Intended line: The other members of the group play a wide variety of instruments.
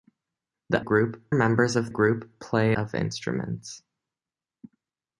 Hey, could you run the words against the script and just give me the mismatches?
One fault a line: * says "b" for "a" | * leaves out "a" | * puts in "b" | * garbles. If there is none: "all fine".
* says "group" for "other"
* leaves out "the"
* leaves out "a wide variety"